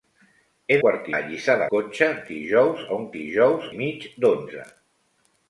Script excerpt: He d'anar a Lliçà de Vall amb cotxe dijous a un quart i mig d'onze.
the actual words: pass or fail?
fail